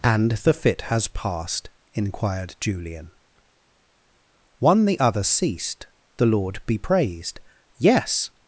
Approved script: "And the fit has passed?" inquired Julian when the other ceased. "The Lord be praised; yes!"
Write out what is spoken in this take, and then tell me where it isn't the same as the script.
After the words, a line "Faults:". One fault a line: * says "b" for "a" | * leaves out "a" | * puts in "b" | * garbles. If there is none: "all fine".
"And the fit has passed?" inquired Julian one the other ceased. "The Lord be praised; yes!"
Faults:
* says "one" for "when"